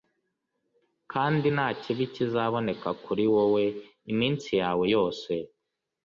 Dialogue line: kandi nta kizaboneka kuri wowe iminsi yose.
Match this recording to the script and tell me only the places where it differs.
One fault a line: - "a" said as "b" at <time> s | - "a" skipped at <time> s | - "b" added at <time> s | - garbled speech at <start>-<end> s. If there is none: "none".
- "kibi" added at 1.8 s
- "yawe" added at 4.6 s